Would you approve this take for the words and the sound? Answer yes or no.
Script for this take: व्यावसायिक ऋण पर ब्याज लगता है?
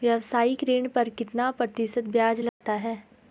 no